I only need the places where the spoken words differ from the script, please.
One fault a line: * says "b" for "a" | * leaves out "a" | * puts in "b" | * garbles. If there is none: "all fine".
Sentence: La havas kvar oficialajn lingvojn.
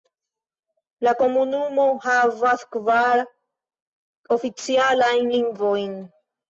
* puts in "komunumo"